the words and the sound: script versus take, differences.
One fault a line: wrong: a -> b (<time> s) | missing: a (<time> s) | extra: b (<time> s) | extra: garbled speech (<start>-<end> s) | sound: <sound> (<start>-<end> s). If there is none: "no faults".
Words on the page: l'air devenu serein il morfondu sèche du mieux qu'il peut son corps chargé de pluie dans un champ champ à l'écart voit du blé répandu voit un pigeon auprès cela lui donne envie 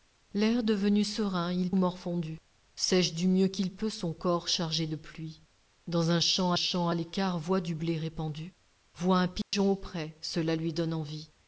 sound: dropout (9.4-9.5 s)